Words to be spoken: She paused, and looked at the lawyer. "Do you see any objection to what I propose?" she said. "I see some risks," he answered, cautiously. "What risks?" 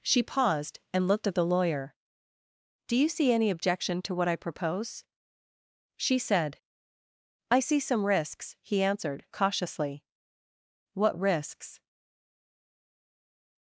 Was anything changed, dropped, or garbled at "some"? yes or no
no